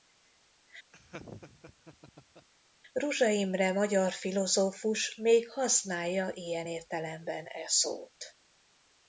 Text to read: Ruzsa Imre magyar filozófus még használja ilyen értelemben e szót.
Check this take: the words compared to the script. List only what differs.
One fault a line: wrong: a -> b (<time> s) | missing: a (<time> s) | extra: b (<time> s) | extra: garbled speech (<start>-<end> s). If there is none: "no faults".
no faults